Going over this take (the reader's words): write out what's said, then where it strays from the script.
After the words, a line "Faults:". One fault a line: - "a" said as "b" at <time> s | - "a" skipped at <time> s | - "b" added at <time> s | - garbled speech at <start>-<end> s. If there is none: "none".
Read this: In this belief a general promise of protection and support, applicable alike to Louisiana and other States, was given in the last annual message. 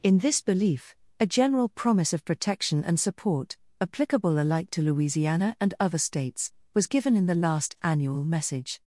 In this belief a general promise of protection and support, applicable alike to Louisiana and other States, was given in the last annual message.
Faults:
none